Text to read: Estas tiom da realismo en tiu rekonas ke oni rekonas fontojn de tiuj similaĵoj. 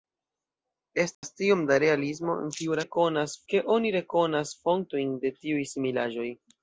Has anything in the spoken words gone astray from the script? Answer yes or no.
no